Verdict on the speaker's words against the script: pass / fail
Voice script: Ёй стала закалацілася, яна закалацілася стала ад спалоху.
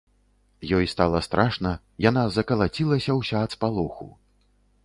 fail